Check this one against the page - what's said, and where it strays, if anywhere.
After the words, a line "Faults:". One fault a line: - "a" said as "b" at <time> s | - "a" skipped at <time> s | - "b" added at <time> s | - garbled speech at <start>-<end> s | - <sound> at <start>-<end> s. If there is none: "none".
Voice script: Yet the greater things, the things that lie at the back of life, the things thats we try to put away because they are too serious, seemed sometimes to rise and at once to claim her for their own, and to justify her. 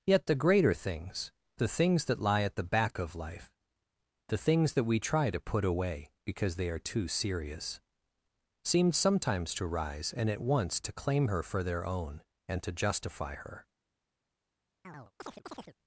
Yet the greater things, the things that lie at the back of life, the things that we try to put away because they are too serious, seemed sometimes to rise and at once to claim her for their own, and to justify her.
Faults:
- "thats" said as "that" at 4.7 s
- chirp at 14.8-15.8 s